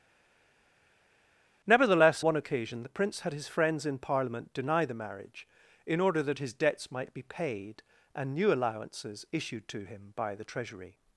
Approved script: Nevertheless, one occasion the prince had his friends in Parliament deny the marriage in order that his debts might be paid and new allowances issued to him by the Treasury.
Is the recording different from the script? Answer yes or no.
no